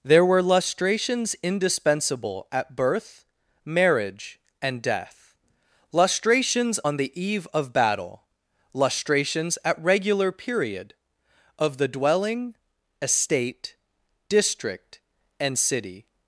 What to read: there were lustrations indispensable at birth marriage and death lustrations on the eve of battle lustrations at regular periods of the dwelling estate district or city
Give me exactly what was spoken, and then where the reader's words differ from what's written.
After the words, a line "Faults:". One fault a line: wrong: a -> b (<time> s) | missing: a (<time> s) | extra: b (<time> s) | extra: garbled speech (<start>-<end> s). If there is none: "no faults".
there were lustrations indispensable at birth marriage and death lustrations on the eve of battle lustrations at regular period of the dwelling estate district and city
Faults:
wrong: periods -> period (10.3 s)
wrong: or -> and (15.4 s)